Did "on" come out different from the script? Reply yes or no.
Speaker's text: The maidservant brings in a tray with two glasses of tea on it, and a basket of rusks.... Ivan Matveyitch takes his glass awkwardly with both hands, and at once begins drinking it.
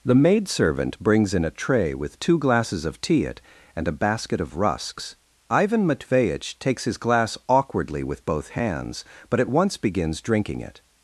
yes